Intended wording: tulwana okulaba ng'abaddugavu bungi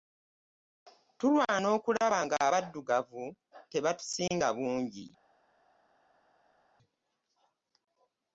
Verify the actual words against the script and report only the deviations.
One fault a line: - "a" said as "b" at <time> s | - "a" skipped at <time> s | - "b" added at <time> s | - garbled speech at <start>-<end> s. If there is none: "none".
- "tebatusinga" added at 3.7 s